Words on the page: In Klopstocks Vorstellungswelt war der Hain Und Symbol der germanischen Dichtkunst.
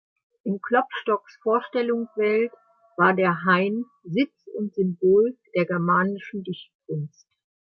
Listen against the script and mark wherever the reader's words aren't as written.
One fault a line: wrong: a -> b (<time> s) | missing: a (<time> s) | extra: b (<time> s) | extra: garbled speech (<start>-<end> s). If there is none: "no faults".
extra: Sitz (4.0 s)